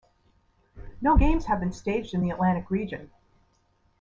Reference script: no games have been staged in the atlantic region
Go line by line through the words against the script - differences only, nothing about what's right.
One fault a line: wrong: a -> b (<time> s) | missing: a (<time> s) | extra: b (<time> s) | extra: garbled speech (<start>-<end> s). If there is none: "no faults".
no faults